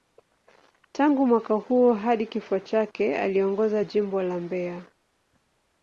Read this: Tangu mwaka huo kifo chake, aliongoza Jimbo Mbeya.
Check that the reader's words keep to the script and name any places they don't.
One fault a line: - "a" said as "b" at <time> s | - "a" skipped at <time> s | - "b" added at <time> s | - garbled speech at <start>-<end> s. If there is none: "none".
- "hadi" added at 1.9 s
- "la" added at 4.2 s